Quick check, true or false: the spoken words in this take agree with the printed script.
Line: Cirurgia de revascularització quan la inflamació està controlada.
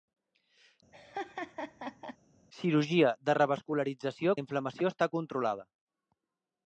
false